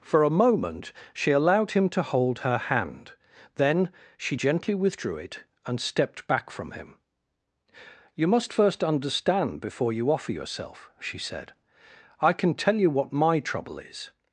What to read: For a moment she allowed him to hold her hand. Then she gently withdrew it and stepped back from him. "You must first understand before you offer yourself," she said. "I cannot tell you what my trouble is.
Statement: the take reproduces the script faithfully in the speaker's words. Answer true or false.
false